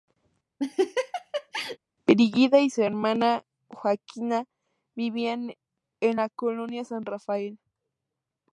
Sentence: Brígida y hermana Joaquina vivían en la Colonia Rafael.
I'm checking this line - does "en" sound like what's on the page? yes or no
yes